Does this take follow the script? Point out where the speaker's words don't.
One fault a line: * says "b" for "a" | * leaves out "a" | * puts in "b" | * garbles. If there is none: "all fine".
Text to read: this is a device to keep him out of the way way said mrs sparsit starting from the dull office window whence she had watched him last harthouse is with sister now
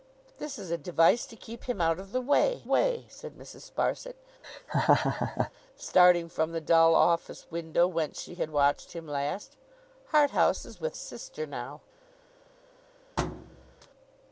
all fine